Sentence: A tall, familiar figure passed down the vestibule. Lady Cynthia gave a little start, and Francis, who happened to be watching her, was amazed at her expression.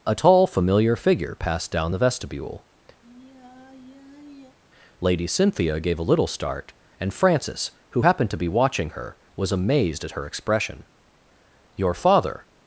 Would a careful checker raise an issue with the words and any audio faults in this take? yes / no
yes